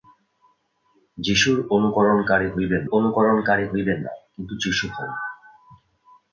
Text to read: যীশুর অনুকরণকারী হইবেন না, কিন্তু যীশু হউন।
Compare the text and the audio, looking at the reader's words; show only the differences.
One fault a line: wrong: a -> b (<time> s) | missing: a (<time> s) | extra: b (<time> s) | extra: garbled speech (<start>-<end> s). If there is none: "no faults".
extra: অনুকরণকারী হইবেন (2.9 s)